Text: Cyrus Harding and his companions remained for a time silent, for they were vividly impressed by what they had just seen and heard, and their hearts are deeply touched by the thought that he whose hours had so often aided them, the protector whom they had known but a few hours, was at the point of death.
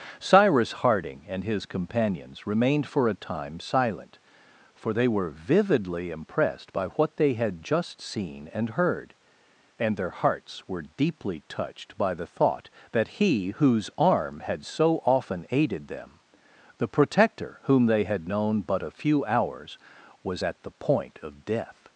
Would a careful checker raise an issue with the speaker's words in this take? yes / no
yes